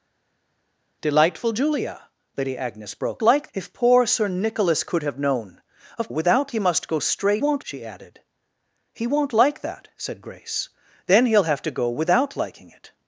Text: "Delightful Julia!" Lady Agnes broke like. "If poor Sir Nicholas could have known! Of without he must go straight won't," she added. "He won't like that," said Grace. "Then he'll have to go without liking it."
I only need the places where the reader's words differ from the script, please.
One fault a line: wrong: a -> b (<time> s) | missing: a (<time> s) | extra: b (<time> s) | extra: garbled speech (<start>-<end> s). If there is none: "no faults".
no faults